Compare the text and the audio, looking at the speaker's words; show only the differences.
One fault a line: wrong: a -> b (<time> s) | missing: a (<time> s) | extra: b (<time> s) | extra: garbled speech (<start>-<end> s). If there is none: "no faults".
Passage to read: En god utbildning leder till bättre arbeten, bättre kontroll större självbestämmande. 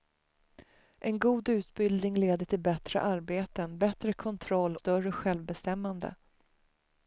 no faults